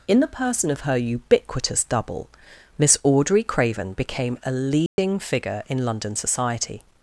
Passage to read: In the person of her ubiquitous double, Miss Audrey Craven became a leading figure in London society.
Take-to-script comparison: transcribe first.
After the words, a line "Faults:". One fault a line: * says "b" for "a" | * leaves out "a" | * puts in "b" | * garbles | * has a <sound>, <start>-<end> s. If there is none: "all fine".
In the person of her ubiquitous double, Miss Audrey Craven became a leading figure in London society.
Faults:
* has a dropout, 4.9-5.0 s